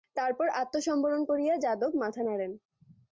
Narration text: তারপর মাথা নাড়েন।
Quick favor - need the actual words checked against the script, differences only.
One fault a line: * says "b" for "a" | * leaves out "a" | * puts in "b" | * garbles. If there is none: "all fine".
* puts in "আত্মসম্বরণ করিয়া যাদব"